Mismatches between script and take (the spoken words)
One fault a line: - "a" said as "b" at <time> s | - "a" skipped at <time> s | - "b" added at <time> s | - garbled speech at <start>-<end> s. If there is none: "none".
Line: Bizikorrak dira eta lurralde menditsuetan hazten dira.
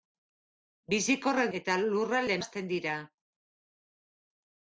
- "dira" skipped at 1.5 s
- "menditsuetan" skipped at 2.4 s